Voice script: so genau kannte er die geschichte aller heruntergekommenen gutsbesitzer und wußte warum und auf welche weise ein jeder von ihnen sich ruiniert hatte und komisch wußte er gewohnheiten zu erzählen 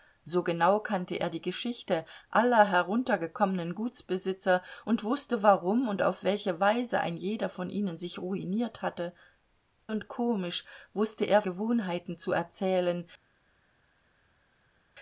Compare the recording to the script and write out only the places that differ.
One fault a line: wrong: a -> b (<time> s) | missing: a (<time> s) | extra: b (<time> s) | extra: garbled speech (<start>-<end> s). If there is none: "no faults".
no faults